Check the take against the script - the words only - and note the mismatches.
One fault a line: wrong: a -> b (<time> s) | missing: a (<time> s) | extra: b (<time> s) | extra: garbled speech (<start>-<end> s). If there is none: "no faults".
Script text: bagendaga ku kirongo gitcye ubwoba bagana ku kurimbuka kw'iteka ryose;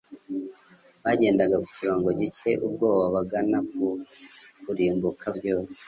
missing: kw'iteka (5.3 s)